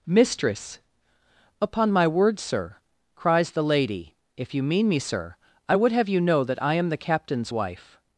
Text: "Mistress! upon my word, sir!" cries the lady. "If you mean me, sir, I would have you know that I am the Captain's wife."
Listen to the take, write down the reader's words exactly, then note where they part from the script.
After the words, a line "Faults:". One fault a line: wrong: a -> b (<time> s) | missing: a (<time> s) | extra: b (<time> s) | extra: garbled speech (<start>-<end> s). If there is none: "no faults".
"Mistress! upon my word, sir!" cries the lady. "If you mean me, sir, I would have you know that I am the Captain's wife."
Faults:
no faults